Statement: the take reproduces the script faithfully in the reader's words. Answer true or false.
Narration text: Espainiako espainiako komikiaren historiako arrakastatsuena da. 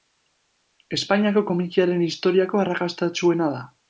false